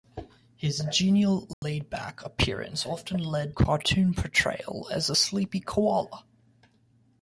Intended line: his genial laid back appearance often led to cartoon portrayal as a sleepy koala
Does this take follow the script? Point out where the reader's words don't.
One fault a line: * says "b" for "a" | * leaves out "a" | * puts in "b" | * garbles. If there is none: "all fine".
* leaves out "to"